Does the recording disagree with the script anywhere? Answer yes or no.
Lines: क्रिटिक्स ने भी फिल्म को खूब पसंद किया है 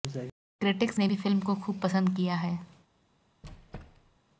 no